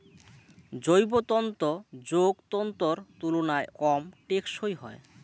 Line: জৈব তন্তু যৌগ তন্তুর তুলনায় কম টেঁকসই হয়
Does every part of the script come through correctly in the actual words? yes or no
yes